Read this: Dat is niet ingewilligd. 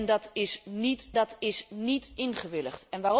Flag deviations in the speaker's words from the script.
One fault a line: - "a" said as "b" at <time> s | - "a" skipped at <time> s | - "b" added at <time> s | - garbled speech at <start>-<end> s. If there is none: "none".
- "dat is niet" added at 1.1 s